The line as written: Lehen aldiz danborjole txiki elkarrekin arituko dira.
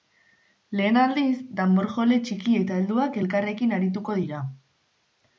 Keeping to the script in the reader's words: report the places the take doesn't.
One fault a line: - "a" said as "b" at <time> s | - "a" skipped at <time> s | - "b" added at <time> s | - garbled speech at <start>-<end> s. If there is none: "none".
- "eta helduak" added at 2.6 s